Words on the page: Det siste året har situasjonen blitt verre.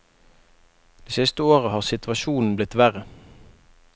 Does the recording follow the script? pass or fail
pass